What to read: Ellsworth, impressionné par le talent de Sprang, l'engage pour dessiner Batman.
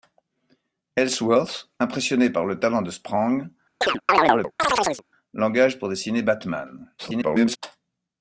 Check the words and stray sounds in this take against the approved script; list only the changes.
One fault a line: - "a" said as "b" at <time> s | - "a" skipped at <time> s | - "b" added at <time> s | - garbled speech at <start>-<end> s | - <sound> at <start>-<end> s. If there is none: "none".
- chirp at 3.8-5.0 s
- garbled speech at 7.0-7.6 s